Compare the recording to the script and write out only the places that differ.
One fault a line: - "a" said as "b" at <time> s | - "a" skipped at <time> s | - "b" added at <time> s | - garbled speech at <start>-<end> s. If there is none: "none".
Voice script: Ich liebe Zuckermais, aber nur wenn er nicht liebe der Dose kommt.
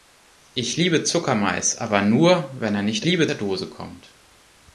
none